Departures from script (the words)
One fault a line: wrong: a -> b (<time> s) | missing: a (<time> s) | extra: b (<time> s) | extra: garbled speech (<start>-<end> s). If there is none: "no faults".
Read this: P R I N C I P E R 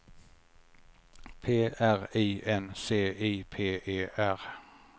no faults